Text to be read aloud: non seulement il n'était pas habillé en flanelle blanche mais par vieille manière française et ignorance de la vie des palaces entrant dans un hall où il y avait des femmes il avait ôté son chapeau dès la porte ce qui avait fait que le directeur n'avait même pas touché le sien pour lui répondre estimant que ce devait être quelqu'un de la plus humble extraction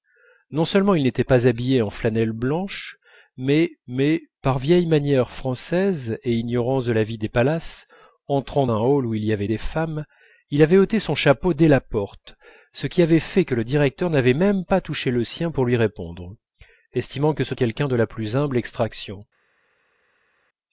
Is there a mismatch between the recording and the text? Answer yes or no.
yes